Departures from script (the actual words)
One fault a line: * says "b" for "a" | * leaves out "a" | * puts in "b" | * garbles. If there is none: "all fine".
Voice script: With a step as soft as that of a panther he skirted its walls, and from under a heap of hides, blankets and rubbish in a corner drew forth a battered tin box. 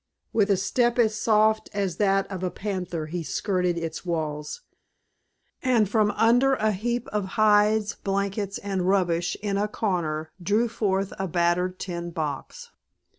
all fine